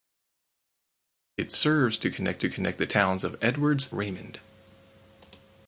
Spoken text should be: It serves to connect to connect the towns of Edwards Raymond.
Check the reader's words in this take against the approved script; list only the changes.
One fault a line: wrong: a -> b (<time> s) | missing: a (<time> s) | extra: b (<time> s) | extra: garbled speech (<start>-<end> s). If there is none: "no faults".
no faults